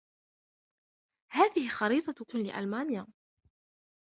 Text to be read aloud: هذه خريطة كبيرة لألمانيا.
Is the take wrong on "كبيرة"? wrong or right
wrong